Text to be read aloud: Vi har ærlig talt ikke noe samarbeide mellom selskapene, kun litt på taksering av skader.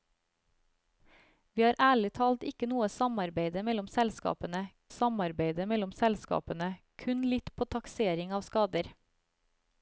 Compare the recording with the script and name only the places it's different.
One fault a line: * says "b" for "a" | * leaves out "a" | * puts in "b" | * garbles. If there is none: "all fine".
* puts in "samarbeide mellom selskapene"